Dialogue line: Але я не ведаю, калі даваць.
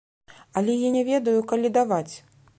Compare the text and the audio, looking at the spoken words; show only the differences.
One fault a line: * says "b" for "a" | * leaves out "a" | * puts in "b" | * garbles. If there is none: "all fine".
all fine